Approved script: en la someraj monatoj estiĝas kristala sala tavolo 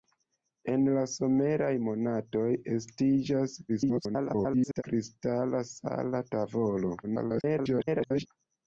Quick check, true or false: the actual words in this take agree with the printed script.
false